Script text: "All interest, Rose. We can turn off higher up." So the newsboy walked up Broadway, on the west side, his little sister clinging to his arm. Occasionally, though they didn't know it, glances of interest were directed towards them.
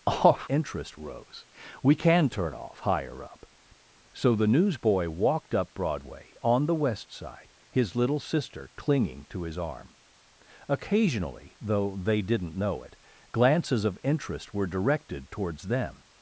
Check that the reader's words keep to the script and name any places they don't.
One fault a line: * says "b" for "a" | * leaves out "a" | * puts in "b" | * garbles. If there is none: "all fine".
all fine